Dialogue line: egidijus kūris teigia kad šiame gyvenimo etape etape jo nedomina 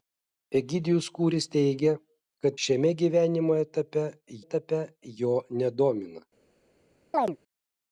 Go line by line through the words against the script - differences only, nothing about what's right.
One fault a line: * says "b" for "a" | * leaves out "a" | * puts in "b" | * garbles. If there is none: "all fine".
all fine